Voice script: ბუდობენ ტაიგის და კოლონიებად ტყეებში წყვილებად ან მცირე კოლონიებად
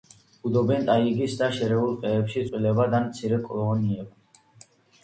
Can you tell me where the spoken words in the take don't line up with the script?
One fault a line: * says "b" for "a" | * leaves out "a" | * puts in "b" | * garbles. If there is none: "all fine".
* says "შერეულ" for "კოლონიებად"